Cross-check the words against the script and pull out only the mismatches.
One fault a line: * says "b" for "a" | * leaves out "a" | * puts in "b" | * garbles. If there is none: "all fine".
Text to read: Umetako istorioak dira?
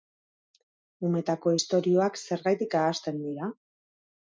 * puts in "zergatik ahazten"